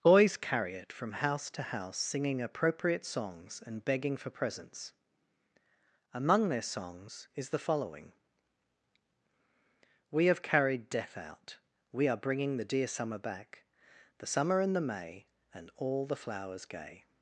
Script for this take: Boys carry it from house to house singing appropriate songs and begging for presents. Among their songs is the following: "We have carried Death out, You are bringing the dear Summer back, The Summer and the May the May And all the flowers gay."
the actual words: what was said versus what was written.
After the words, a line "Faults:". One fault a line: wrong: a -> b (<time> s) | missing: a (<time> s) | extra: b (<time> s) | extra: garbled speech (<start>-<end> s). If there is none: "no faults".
Boys carry it from house to house singing appropriate songs and begging for presents. Among their songs is the following: "We have carried Death out, We are bringing the dear Summer back, The Summer and the May And all the flowers gay."
Faults:
wrong: You -> We (11.9 s)
missing: the May (15.3 s)